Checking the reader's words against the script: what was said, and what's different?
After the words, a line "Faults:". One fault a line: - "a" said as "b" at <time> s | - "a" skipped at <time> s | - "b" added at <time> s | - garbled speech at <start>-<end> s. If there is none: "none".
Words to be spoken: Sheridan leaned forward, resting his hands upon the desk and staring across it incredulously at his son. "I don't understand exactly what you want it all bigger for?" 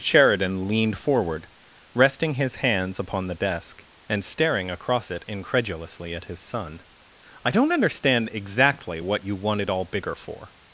Sheridan leaned forward, resting his hands upon the desk and staring across it incredulously at his son. "I don't understand exactly what you want it all bigger for?"
Faults:
none